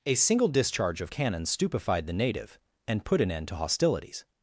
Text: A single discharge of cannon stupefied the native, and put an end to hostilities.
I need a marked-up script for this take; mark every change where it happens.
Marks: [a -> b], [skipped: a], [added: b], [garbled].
A single discharge of cannon stupefied the native, and put an end to hostilities.